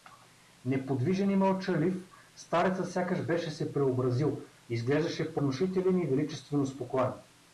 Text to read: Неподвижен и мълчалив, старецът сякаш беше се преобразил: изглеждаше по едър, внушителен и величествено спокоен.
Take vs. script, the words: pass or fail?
fail